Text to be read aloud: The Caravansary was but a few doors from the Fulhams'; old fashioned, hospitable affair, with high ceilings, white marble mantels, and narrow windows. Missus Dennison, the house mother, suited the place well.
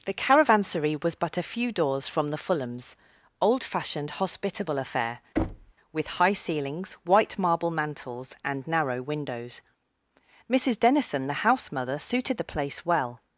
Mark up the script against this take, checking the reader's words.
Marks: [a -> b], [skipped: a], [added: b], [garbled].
The Caravansary was but a few doors from the Fulhams'; old fashioned, hospitable affair, with high ceilings, white marble mantels, and narrow windows. Missus Dennison, the house mother, suited the place well.